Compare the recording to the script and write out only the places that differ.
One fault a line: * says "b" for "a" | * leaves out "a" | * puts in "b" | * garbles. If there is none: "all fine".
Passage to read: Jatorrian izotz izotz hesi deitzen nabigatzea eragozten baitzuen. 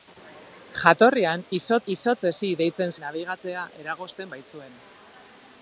all fine